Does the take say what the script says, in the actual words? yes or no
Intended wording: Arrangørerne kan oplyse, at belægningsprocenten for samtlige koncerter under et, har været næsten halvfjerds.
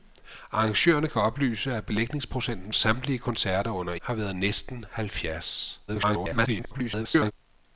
no